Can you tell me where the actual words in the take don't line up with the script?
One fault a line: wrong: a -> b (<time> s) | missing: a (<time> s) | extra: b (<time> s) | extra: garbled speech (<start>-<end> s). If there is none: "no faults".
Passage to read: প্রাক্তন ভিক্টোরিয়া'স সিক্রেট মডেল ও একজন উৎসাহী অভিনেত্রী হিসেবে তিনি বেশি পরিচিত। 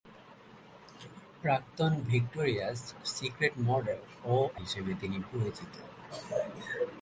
missing: একজন উৎসাহী অভিনেত্রী (4.3 s)
missing: বেশি (5.2 s)